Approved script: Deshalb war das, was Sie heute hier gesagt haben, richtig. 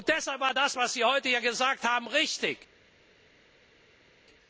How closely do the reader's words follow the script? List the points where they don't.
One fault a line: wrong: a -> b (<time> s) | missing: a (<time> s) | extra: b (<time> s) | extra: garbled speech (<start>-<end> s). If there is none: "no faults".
no faults